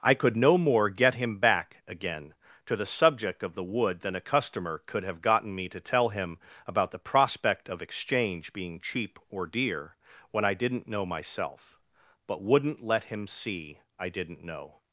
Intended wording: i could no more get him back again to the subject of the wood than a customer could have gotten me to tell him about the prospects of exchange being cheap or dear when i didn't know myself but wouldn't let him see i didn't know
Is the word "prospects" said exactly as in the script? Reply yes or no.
no